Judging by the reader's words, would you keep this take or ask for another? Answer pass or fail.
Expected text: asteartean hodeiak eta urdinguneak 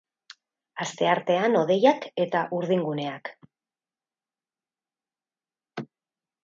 pass